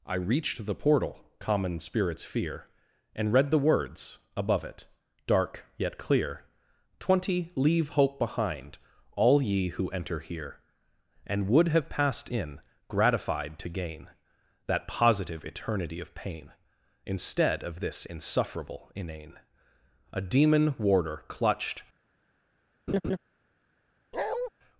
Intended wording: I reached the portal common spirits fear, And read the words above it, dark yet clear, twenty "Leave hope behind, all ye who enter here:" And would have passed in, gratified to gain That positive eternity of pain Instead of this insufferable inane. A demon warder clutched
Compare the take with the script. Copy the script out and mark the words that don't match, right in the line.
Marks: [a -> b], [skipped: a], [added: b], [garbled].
I reached the portal common spirits fear, And read the words above it, dark yet clear, twenty "Leave hope behind, all ye who enter here:" And would have passed in, gratified to gain That positive eternity of pain Instead of this insufferable inane. A demon warder clutched